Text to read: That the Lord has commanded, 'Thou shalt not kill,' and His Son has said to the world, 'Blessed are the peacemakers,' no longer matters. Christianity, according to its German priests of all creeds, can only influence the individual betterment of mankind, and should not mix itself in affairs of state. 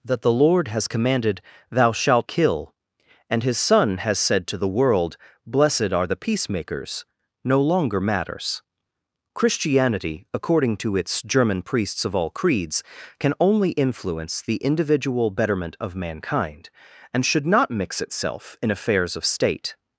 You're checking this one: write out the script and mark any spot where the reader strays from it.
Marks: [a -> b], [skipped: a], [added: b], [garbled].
That the Lord has commanded, 'Thou shalt [skipped: not] kill,' and His Son has said to the world, 'Blessed are the peacemakers,' no longer matters. Christianity, according to its German priests of all creeds, can only influence the individual betterment of mankind, and should not mix itself in affairs of state.